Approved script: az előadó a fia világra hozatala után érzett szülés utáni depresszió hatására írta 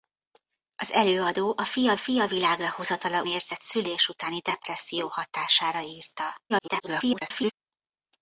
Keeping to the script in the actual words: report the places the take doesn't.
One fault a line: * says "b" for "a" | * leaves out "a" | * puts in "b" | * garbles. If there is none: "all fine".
* puts in "fia"
* leaves out "után"
* garbles